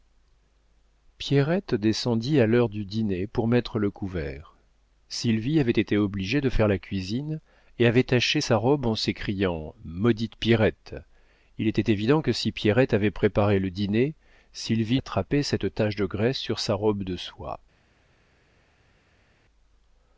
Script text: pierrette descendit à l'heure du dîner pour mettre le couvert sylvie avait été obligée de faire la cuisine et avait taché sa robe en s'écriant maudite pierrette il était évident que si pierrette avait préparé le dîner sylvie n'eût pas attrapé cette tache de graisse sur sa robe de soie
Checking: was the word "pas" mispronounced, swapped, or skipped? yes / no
yes